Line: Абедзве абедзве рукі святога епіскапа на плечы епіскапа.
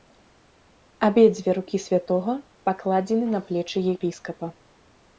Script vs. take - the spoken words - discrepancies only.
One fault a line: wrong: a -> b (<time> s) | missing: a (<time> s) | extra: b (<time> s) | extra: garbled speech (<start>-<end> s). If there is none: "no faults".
missing: абедзве (1.5 s)
wrong: епіскапа -> пакладзены (2.7 s)